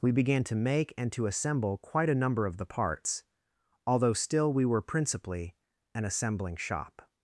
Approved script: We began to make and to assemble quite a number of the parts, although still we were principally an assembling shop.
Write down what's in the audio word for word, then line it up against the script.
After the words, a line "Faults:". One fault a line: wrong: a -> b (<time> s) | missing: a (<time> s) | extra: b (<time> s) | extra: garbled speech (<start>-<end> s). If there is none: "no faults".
We began to make and to assemble quite a number of the parts, although still we were principally an assembling shop.
Faults:
no faults